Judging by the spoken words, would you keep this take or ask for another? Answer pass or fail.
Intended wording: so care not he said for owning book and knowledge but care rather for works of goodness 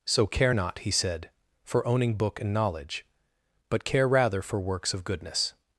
pass